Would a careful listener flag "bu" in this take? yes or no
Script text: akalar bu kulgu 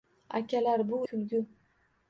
no